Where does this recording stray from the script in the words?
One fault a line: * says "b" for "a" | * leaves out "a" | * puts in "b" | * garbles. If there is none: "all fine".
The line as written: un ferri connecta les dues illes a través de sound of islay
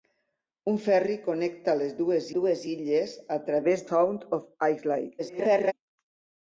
* puts in "dues"
* leaves out "de"
* garbles